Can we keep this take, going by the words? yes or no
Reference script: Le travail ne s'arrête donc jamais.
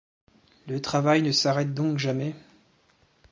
yes